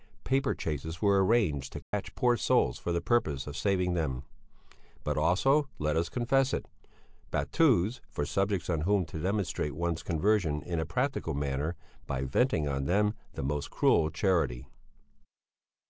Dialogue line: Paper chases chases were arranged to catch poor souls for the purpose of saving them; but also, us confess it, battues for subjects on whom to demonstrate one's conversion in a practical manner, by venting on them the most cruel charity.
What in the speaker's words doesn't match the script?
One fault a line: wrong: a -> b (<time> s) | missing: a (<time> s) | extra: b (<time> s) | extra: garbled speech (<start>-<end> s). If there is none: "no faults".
missing: chases (1.0 s)
extra: let (5.8 s)